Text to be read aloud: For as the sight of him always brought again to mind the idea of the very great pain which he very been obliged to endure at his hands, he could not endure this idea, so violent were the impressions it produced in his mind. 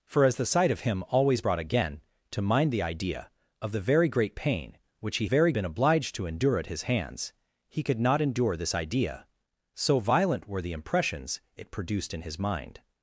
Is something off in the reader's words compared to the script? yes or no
no